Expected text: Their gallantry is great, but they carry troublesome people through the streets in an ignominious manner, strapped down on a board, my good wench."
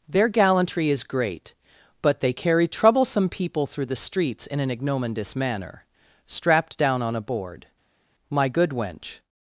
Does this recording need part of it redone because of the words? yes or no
no